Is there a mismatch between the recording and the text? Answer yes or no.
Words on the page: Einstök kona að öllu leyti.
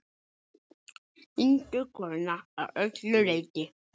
no